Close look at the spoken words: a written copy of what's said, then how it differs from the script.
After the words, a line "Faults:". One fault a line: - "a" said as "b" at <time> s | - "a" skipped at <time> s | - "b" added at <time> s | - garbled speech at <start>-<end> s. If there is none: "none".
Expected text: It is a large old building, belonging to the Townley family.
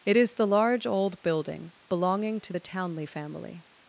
It is the large old building, belonging to the Townley family.
Faults:
- "a" said as "the" at 0.3 s